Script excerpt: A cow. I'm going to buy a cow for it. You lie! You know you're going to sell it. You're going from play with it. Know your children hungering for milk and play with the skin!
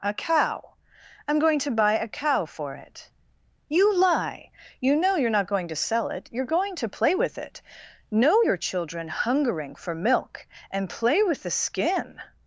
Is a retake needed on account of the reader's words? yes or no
yes